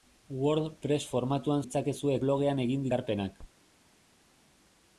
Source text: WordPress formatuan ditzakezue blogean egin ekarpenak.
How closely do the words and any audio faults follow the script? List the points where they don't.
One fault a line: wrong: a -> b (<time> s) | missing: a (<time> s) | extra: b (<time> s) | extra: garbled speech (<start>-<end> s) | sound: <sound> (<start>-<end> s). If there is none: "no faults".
no faults